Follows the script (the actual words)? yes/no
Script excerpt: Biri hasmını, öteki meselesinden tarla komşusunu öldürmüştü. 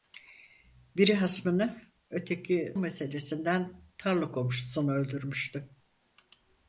yes